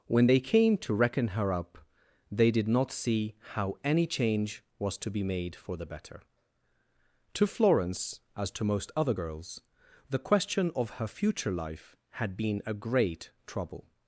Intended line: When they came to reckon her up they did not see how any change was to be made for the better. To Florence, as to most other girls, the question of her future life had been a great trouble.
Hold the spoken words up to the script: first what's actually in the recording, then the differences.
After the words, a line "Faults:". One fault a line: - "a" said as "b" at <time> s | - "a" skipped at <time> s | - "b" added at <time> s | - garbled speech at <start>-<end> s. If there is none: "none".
When they came to reckon her up they did not see how any change was to be made for the better. To Florence, as to most other girls, the question of her future life had been a great trouble.
Faults:
none